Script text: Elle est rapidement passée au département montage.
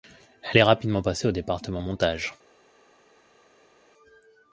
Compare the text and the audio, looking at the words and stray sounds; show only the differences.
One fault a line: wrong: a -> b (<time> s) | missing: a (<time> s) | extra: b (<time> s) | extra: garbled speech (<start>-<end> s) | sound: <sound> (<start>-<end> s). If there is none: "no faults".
no faults